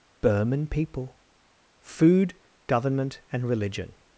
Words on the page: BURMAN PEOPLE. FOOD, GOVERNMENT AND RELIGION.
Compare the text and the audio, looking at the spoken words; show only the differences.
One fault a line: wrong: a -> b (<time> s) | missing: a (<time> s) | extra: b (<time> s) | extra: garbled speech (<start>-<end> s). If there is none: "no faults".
no faults